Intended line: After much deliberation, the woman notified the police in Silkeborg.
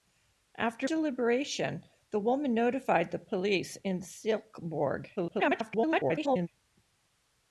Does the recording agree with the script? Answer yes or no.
no